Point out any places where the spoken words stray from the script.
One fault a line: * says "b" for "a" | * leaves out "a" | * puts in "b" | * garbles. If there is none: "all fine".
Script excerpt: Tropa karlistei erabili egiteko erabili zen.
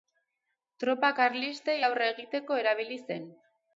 * says "aurre" for "erabili"